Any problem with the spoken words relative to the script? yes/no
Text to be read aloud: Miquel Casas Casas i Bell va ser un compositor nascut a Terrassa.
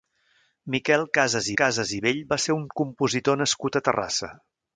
no